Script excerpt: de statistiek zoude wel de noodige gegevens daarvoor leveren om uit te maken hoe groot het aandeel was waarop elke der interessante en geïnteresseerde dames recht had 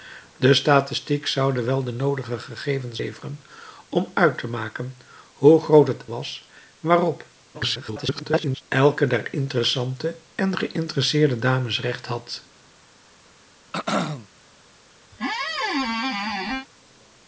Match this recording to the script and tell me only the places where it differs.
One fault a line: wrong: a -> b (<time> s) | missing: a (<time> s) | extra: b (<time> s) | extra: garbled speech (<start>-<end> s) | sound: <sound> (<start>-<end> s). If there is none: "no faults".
missing: daarvoor (3.0 s)
missing: aandeel (6.0 s)
extra: garbled speech (7.5-8.6 s)
sound: throat clearing (13.7-14.3 s)
sound: squeak (15.1-16.7 s)